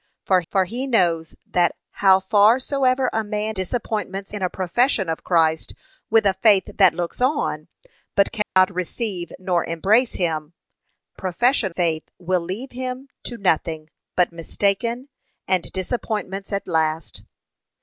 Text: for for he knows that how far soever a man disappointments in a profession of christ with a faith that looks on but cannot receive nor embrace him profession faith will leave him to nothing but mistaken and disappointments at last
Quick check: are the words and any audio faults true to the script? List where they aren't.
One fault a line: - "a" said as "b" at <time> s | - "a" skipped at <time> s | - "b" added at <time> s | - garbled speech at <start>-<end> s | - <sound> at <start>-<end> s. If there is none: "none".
- dropout at 8.4-8.6 s